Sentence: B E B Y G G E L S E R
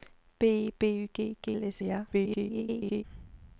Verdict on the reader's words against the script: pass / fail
fail